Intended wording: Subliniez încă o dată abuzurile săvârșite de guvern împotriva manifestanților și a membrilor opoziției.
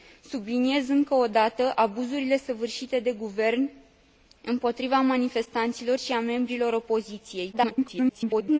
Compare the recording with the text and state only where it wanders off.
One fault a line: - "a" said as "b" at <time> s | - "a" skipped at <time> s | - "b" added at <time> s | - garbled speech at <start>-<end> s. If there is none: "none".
- garbled speech at 7.5-8.6 s